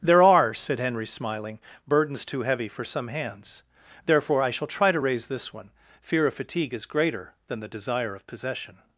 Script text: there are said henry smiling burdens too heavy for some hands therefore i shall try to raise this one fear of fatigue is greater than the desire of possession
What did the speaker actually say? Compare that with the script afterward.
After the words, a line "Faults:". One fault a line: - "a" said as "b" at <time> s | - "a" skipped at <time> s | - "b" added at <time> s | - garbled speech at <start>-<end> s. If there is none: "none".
there are said henry smiling burdens too heavy for some hands therefore i shall try to raise this one fear of fatigue is greater than the desire of possession
Faults:
none